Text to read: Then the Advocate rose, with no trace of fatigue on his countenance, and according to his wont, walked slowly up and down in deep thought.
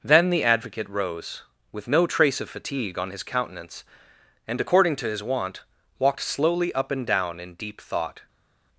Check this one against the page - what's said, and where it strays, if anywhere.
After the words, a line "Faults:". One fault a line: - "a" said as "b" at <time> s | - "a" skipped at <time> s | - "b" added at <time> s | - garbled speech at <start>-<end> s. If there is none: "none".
Then the Advocate rose, with no trace of fatigue on his countenance, and according to his wont, walked slowly up and down in deep thought.
Faults:
none